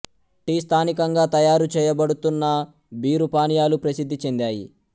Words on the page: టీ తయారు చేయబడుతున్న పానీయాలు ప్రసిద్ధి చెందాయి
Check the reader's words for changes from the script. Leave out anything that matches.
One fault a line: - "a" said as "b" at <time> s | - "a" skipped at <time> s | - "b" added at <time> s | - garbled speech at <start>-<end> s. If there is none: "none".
- "స్థానికంగా" added at 0.6 s
- "బీరు" added at 3.0 s